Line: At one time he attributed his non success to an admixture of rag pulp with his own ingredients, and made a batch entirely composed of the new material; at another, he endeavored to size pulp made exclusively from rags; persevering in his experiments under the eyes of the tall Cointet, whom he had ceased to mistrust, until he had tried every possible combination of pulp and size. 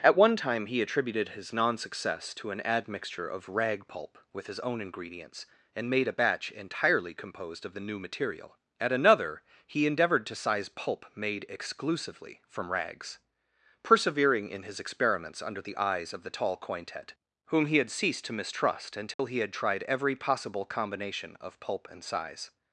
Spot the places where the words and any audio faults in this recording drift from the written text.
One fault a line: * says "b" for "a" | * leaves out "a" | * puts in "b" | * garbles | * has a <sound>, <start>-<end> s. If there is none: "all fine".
* has a dropout, 19.1-19.2 s